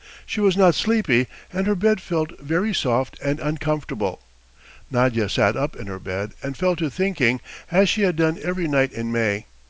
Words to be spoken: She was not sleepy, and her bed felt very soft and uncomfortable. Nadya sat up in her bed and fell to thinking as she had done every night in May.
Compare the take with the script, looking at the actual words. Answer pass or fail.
pass